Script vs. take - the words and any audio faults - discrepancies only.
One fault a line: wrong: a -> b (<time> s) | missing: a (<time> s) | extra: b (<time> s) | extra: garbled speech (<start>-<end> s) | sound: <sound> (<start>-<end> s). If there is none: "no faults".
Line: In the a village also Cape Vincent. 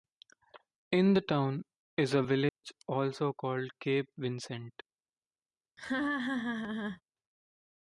extra: town is (1.2 s)
sound: dropout (2.5-2.6 s)
extra: called (3.3 s)
sound: laugh (5.8-7.0 s)